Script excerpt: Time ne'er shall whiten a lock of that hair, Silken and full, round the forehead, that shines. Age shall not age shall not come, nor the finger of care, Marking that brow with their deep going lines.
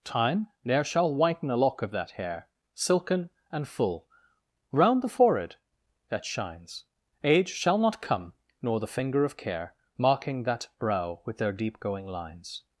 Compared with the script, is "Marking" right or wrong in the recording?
right